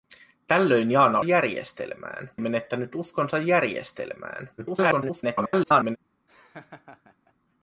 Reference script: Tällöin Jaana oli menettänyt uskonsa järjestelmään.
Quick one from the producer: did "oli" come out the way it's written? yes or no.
no